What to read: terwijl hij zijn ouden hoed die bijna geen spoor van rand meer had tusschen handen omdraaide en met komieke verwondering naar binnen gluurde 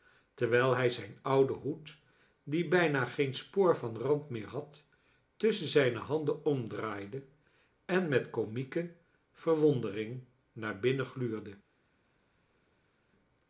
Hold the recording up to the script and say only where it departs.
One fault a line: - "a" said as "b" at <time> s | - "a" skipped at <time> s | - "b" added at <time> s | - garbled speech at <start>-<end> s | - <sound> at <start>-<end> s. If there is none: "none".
- "zijne" added at 5.7 s